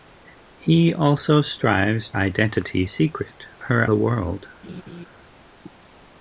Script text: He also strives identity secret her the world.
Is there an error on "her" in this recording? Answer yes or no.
no